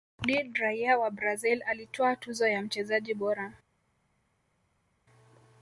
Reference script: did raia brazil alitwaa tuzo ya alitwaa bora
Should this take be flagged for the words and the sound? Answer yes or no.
yes